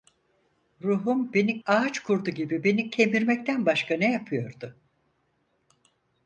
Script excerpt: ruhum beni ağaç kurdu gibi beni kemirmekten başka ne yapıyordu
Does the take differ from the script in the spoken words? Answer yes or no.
no